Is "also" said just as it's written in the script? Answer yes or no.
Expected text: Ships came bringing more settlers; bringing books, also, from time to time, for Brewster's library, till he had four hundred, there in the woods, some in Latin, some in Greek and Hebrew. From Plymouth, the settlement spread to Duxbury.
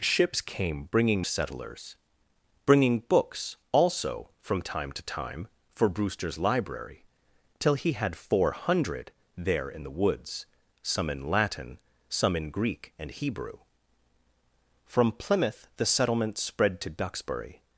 yes